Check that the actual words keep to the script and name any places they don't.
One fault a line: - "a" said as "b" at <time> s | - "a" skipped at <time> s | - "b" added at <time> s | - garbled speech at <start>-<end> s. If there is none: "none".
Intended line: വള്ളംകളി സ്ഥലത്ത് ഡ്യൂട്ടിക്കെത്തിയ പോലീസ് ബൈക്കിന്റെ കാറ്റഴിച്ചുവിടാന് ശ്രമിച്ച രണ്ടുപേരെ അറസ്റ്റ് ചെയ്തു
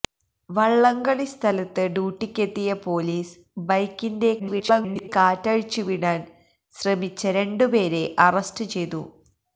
- garbled speech at 4.4-5.1 s